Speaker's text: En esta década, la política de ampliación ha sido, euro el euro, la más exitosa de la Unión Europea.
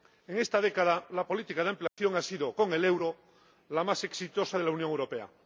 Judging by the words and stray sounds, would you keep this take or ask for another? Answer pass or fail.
fail